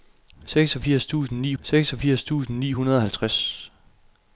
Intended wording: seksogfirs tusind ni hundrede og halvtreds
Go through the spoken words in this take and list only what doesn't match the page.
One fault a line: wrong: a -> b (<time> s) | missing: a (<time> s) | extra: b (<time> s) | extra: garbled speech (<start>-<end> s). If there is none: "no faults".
extra: seksogfirs tusind ni (1.6 s)